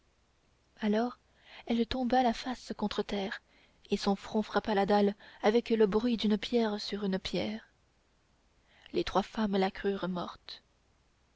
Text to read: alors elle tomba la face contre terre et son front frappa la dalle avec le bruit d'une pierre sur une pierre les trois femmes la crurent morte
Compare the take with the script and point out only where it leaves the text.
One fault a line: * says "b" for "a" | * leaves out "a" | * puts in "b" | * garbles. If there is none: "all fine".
all fine